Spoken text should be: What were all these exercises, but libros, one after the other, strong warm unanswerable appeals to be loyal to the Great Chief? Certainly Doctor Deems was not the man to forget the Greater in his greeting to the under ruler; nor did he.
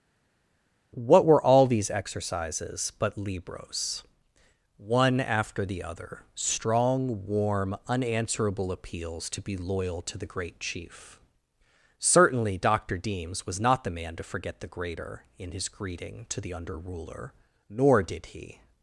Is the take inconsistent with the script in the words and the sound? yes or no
no